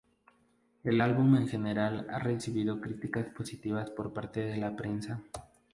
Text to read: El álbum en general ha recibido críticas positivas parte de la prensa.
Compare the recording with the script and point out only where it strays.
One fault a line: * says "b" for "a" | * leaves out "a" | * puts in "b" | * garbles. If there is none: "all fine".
* puts in "por"